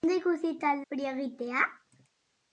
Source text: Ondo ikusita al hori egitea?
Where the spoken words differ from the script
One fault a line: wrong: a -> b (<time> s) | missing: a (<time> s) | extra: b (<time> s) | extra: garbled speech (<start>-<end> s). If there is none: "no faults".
no faults